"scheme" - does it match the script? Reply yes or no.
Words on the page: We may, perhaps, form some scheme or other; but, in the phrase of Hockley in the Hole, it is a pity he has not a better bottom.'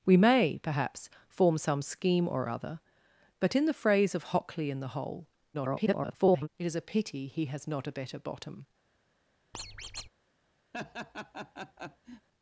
yes